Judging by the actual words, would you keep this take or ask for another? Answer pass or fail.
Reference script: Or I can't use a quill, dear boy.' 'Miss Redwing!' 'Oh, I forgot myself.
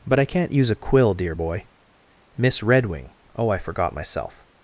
fail